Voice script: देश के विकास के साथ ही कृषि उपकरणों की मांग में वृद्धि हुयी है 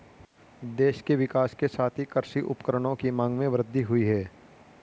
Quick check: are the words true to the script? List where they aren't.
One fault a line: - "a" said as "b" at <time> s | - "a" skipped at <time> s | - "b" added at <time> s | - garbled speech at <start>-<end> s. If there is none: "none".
none